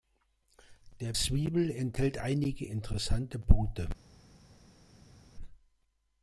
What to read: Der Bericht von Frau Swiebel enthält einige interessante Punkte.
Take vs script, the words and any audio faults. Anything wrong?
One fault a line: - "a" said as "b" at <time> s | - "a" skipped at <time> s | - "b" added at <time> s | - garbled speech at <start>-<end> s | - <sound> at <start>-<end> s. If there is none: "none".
- "Bericht von Frau" skipped at 1.1 s